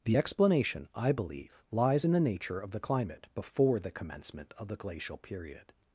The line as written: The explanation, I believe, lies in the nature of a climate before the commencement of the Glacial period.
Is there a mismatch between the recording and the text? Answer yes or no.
yes